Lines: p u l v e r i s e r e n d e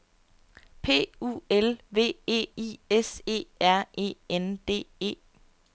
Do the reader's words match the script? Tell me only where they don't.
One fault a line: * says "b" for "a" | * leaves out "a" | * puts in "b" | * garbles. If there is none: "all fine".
* leaves out "r"